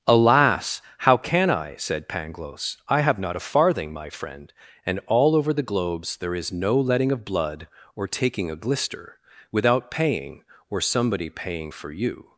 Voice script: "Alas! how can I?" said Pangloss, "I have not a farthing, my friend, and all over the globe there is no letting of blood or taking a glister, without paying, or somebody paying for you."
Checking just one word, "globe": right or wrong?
wrong